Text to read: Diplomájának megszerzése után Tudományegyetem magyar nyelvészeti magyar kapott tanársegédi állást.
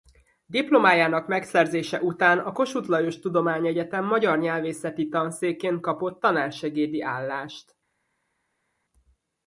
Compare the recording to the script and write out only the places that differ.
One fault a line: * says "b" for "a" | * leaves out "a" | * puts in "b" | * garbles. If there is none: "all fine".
* puts in "a Kossuth Lajos"
* says "tanszékén" for "magyar"